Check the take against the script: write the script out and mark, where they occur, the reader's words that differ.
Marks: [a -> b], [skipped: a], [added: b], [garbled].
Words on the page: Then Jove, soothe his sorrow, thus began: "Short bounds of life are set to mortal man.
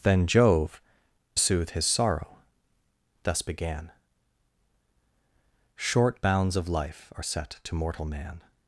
Then Jove, soothe his sorrow, thus began: "Short bounds of life are set to mortal man.